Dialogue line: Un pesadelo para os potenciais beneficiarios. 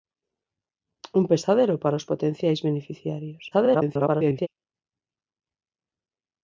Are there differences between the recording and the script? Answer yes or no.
yes